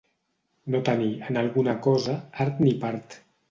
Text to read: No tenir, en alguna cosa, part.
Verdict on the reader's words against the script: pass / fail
fail